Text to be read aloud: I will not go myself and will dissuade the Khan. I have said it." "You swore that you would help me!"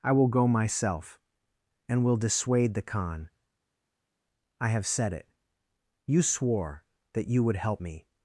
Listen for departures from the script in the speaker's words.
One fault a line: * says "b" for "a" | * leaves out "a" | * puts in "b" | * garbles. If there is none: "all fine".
* leaves out "not"